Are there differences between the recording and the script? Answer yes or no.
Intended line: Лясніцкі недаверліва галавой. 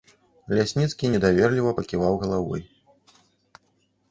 yes